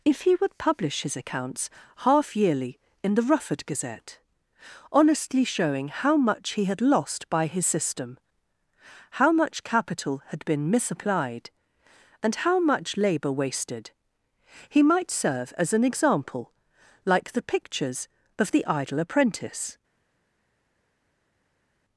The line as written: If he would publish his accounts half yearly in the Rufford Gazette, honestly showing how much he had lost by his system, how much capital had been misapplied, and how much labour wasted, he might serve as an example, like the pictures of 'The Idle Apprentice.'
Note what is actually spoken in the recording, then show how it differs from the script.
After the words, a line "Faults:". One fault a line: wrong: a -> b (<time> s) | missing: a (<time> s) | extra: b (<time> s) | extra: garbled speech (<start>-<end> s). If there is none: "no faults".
If he would publish his accounts half yearly in the Rufford Gazette, honestly showing how much he had lost by his system, how much capital had been misapplied, and how much labour wasted, he might serve as an example, like the pictures of 'The Idle Apprentice.'
Faults:
no faults